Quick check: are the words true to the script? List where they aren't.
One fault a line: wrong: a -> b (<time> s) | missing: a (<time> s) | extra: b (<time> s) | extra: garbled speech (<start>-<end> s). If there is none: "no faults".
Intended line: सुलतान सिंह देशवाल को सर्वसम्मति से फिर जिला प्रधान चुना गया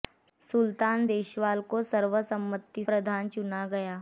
missing: सिंह (1.1 s)
missing: से फिर जिला (2.8 s)